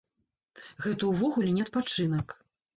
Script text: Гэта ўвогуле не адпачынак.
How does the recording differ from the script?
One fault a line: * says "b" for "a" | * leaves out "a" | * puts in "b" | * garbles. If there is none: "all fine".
all fine